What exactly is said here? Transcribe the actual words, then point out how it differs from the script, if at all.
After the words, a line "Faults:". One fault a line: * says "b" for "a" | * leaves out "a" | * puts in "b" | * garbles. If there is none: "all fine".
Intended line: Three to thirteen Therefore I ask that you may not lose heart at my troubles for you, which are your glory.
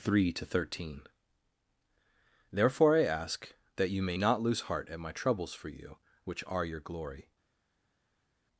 Three to thirteen Therefore I ask that you may not lose heart at my troubles for you, which are your glory.
Faults:
all fine